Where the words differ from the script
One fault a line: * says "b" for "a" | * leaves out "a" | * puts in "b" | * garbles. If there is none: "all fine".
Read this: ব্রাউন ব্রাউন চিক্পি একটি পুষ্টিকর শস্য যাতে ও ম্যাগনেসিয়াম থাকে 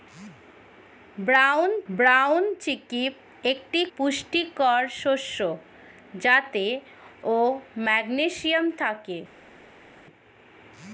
all fine